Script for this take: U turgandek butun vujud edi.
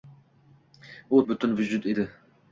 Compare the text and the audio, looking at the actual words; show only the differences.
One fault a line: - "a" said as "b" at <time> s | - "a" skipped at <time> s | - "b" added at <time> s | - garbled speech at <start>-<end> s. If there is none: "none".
- "turgandek" skipped at 1.2 s